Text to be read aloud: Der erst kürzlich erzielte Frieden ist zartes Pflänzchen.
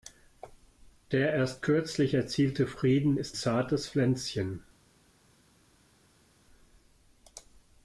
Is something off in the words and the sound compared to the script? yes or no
no